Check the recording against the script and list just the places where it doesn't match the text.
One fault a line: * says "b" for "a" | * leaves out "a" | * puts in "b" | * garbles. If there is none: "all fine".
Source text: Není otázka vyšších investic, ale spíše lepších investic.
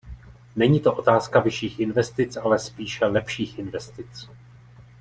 * puts in "to"